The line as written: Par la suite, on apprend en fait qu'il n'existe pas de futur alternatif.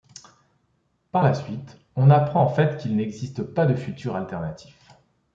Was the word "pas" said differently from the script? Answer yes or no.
no